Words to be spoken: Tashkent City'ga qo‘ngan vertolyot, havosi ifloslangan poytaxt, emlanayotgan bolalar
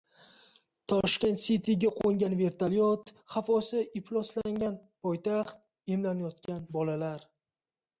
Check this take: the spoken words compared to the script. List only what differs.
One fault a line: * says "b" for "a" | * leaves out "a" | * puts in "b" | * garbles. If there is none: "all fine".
all fine